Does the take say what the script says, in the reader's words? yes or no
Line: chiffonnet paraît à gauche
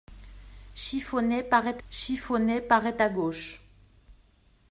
no